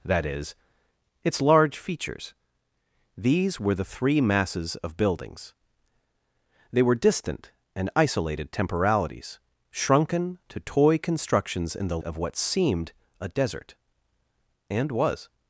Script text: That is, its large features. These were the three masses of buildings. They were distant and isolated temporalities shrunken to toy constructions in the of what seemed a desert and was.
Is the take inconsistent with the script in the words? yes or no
no